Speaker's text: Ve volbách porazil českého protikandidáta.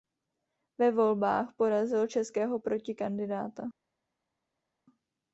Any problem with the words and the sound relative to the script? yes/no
no